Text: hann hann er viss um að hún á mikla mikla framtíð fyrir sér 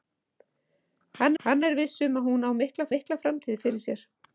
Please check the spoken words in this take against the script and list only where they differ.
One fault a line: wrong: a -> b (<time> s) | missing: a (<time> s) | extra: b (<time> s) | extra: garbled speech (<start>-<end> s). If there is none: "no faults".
no faults